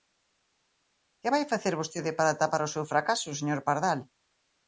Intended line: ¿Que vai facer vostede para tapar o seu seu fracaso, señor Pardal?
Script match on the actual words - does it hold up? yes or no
no